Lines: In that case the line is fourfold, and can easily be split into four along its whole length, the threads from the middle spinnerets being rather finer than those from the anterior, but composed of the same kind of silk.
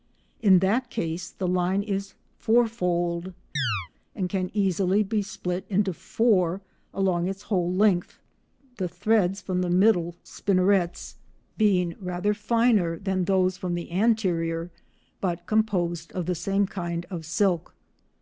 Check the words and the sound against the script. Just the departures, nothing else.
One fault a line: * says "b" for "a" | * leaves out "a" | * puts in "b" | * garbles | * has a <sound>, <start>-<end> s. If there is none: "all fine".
* has a chirp, 3.6-3.9 s